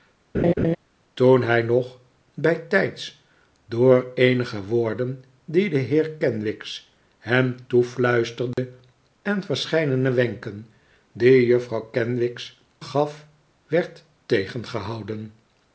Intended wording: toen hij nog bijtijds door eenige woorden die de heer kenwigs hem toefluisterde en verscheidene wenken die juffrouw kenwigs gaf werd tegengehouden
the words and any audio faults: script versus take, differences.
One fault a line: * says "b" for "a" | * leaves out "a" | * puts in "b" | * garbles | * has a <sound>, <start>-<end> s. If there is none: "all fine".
* has a laugh, 0.3-0.8 s
* has a dropout, 8.5-8.6 s